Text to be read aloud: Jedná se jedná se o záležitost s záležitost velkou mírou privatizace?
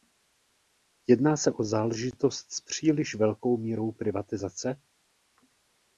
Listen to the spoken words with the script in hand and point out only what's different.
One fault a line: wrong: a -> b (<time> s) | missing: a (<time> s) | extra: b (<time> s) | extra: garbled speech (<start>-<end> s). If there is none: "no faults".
missing: jedná se (1.5 s)
wrong: záležitost -> příliš (2.6 s)